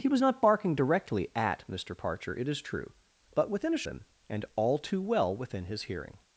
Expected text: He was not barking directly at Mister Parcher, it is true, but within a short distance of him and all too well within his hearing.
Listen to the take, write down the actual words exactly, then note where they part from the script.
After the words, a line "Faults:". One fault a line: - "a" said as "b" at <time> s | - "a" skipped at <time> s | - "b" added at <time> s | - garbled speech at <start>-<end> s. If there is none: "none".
He was not barking directly at Mister Parcher, it is true, but within a him and all too well within his hearing.
Faults:
- "short distance of" skipped at 3.8 s